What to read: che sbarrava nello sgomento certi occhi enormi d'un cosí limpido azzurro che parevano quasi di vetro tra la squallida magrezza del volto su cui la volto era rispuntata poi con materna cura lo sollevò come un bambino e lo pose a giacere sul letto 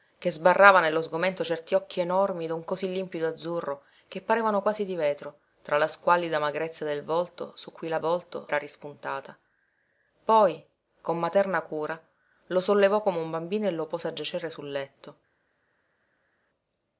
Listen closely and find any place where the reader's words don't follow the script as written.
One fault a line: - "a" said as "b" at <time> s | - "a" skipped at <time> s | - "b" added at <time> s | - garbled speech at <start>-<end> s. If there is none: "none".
none